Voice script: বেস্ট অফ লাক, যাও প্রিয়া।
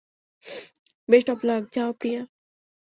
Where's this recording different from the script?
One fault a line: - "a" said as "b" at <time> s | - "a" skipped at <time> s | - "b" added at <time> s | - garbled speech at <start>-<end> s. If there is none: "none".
none